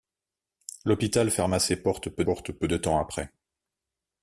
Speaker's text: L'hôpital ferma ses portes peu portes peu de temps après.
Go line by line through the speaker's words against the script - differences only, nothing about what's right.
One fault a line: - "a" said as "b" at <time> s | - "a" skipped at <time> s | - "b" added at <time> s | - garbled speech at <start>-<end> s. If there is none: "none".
none